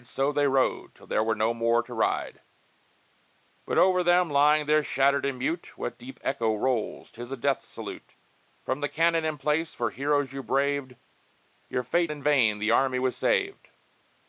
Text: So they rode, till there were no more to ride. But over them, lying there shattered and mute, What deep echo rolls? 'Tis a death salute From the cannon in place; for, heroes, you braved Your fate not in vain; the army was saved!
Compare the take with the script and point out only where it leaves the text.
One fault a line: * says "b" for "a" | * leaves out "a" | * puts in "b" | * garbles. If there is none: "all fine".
* leaves out "not"